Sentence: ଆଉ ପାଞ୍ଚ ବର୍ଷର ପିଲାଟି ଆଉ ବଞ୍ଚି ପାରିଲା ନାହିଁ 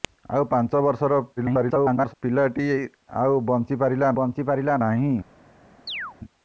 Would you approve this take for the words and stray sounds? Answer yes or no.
no